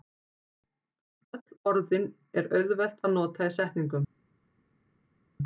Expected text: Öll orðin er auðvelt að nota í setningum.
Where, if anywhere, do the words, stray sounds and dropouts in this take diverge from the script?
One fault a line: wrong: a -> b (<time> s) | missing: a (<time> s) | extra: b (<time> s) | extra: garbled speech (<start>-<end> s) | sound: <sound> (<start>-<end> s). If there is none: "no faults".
no faults